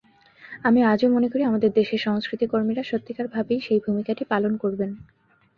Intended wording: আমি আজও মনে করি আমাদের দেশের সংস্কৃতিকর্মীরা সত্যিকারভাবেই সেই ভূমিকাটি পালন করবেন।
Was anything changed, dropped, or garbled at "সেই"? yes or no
no